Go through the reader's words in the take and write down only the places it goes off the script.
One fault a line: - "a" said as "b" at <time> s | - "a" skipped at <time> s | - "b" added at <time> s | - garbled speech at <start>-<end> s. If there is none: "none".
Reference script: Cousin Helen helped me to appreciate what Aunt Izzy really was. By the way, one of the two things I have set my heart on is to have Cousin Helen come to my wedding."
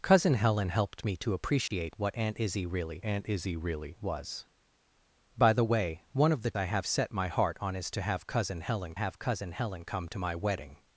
- "Aunt Izzy really" added at 3.0 s
- "two things" skipped at 6.5 s
- "have Cousin Helen" added at 8.9 s